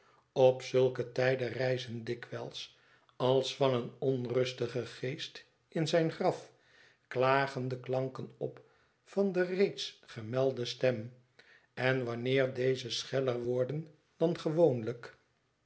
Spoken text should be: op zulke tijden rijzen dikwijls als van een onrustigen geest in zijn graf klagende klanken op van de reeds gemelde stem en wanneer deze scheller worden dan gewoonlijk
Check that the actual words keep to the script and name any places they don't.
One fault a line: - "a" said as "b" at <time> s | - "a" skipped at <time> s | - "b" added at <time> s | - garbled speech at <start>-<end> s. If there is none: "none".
none